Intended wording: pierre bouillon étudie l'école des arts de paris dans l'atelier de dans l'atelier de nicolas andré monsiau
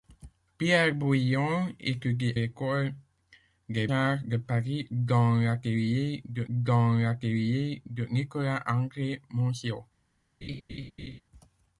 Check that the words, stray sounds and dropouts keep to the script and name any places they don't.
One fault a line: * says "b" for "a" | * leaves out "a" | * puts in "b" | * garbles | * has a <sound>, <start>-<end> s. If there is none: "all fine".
* has a laugh, 10.4-11.2 s